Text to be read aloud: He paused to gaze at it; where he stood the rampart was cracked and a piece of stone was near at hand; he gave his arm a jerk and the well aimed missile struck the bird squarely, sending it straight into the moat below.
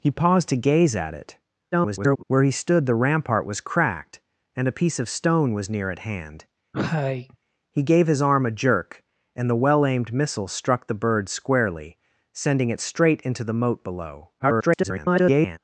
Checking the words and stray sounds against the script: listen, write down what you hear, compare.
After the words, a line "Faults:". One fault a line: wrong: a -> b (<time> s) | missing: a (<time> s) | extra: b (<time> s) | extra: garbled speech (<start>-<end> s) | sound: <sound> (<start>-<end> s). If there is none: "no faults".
He paused to gaze at it; [garbled] where he stood the rampart was cracked and a piece of stone was near at hand; he gave his arm a jerk and the well aimed missile struck the bird squarely, sending it straight into the moat below. [garbled]
Faults:
extra: garbled speech (1.7-2.2 s)
sound: cough (6.7-7.4 s)
extra: garbled speech (14.4-15.6 s)